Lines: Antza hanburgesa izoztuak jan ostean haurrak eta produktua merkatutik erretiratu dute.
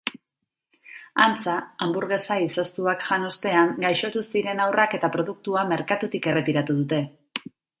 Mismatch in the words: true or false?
true